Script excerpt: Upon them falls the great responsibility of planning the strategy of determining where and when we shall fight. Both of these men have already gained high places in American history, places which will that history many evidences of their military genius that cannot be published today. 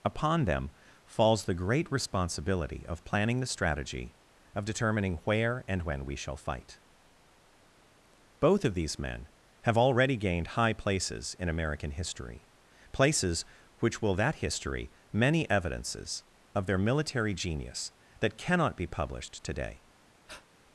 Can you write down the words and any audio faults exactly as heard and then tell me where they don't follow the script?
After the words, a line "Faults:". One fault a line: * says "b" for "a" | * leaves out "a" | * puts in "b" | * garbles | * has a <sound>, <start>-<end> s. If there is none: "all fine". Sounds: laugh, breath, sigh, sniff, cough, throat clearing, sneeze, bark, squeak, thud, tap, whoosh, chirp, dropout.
Upon them falls the great responsibility of planning the strategy of determining where and when we shall fight. Both of these men have already gained high places in American history, places which will that history many evidences of their military genius that cannot be published today.
Faults:
* has a breath, 20.3-20.5 s